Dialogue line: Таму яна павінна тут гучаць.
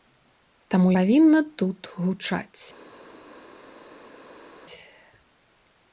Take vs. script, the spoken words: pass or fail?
fail